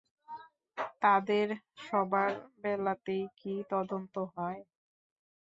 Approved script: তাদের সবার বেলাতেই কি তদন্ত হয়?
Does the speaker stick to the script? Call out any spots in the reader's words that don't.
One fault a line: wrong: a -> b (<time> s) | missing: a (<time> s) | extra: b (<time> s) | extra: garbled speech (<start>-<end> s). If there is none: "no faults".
no faults